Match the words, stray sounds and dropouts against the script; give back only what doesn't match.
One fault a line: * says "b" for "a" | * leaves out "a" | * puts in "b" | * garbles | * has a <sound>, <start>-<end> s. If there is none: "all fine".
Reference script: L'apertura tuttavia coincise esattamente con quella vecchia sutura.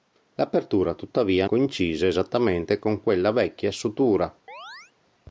* has a chirp, 4.5-4.9 s